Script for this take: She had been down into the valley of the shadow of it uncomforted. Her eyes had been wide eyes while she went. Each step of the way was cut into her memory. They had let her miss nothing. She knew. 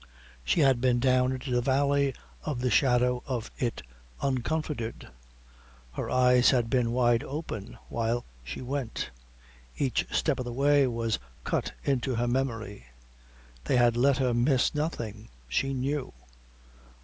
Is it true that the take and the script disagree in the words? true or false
true